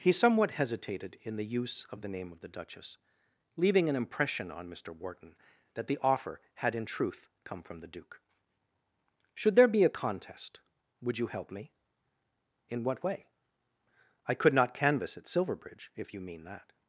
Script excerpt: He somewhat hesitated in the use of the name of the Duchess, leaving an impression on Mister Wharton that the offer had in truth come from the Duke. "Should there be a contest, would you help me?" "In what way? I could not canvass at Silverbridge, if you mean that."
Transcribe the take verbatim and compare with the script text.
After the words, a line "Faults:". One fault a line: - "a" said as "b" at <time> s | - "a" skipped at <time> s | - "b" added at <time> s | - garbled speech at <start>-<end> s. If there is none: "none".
He somewhat hesitated in the use of the name of the Duchess, leaving an impression on Mister Wharton that the offer had in truth come from the Duke. "Should there be a contest, would you help me?" "In what way? I could not canvass at Silverbridge, if you mean that."
Faults:
none